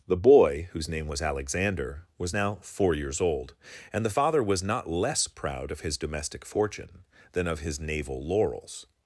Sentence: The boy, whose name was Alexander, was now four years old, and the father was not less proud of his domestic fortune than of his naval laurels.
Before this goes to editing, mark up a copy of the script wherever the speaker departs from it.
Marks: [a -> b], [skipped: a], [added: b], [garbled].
The boy, whose name was Alexander, was now four years old, and the father was not less proud of his domestic fortune than of his naval laurels.